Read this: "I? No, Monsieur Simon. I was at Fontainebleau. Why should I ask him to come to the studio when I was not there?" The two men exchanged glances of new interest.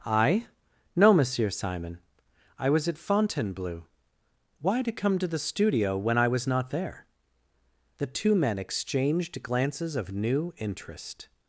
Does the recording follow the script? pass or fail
fail